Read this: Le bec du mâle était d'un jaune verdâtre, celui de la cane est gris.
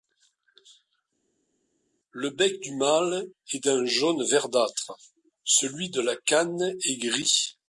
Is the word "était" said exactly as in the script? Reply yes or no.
no